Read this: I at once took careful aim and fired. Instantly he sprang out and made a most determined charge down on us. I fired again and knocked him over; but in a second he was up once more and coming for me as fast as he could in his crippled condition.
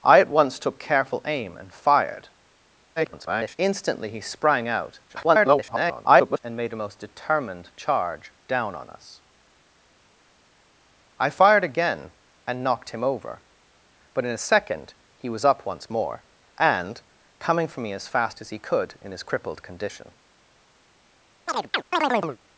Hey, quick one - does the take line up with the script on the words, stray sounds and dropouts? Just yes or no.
no